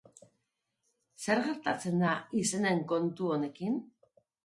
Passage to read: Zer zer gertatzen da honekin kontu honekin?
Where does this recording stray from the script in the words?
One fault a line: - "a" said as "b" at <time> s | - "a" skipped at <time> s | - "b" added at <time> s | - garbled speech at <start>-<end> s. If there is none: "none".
- "zer" skipped at 1.4 s
- "honekin" said as "izenen" at 2.5 s